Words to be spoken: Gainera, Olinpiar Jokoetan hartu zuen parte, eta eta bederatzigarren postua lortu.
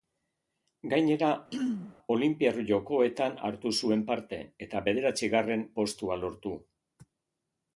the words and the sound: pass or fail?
fail